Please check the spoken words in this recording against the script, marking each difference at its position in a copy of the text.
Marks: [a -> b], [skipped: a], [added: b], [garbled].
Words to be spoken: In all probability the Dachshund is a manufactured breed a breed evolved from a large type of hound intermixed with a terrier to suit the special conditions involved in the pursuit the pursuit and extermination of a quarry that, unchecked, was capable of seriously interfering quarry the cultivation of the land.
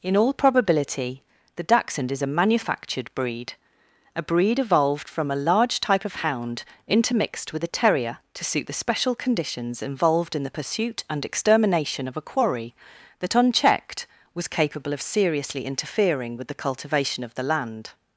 In all probability the Dachshund is a manufactured breed a breed evolved from a large type of hound intermixed with a terrier to suit the special conditions involved in the pursuit [skipped: the pursuit] and extermination of a quarry that, unchecked, was capable of seriously interfering [quarry -> with] the cultivation of the land.